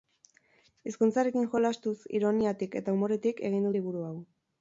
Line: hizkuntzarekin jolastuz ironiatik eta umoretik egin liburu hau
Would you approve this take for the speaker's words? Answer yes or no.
yes